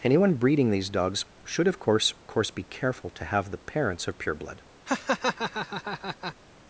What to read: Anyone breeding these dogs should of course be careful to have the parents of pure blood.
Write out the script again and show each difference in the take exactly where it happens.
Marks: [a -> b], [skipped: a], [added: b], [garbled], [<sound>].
Anyone breeding these dogs should of course [added: course] be careful to have the parents of pure blood. [laugh]